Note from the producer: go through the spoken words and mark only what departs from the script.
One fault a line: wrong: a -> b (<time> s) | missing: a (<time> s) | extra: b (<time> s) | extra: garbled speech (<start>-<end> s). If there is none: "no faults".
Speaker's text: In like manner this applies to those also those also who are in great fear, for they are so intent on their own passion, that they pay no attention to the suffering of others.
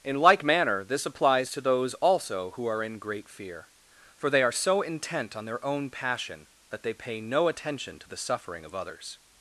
missing: those also (2.5 s)